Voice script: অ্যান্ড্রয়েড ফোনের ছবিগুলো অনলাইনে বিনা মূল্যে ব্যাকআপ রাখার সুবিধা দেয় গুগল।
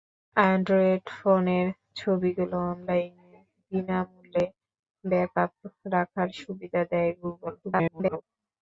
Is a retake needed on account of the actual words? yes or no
yes